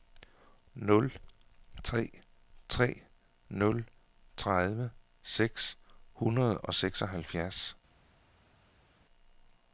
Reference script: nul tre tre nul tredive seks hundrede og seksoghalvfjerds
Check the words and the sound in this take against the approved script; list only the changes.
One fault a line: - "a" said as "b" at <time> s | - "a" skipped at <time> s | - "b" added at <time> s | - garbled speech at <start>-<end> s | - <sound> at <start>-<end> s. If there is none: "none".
none